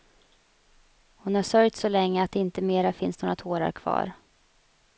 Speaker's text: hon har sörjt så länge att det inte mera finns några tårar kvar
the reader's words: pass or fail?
pass